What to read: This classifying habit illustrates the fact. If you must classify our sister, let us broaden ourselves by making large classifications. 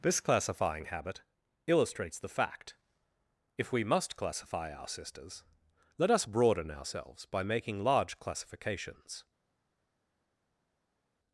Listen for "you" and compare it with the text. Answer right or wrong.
wrong